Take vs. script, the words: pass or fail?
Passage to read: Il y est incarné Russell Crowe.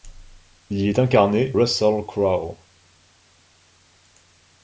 pass